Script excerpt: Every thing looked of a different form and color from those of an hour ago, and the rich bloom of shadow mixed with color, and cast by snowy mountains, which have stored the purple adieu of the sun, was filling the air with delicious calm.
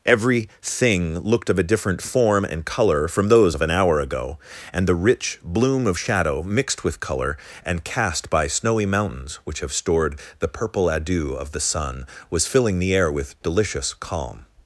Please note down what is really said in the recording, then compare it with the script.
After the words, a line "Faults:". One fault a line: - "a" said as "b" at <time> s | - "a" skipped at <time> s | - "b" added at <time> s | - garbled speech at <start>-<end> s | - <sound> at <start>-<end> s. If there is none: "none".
Every thing looked of a different form and color from those of an hour ago, and the rich bloom of shadow mixed with color, and cast by snowy mountains, which have stored the purple adieu of the sun, was filling the air with delicious calm.
Faults:
none